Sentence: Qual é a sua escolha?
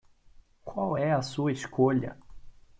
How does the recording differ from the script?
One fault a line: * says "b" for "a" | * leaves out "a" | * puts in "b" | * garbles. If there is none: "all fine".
all fine